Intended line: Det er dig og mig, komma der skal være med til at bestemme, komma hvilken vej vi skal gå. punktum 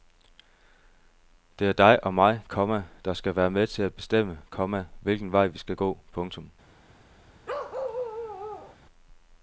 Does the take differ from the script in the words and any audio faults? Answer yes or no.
yes